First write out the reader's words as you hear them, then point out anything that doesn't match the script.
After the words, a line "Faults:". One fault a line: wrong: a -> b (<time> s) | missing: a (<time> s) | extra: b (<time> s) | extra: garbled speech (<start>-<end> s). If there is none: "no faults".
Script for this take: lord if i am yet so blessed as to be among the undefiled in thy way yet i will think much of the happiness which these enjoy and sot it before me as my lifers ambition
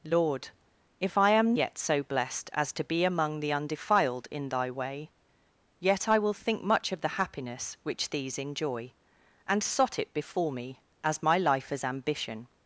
lord if i am yet so blessed as to be among the undefiled in thy way yet i will think much of the happiness which these enjoy and sot it before me as my lifers ambition
Faults:
no faults